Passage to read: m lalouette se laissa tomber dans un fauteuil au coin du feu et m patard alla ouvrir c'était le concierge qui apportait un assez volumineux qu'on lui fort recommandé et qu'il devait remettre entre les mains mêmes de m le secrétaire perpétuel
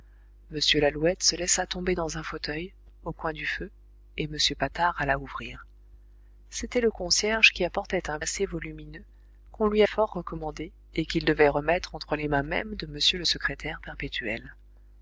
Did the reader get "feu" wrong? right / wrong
right